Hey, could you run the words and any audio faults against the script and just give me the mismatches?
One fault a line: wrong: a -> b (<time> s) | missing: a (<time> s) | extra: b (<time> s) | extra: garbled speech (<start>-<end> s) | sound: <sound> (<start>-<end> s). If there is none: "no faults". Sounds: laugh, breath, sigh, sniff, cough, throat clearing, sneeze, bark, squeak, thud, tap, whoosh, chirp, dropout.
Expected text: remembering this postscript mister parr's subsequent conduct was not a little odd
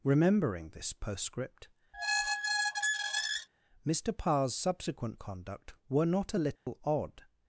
sound: squeak (1.9-3.5 s)
wrong: was -> were (5.9 s)
sound: dropout (6.6-6.7 s)